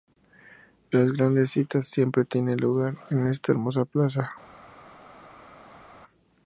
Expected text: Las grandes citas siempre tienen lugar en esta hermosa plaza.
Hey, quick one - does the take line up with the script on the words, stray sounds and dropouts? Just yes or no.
yes